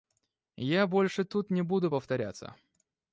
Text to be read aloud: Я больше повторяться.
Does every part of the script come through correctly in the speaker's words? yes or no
no